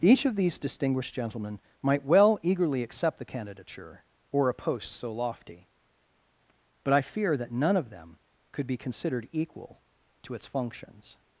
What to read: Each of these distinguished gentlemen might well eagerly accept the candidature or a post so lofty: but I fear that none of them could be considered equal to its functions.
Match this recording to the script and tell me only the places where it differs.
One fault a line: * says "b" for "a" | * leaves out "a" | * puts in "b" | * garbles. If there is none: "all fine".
all fine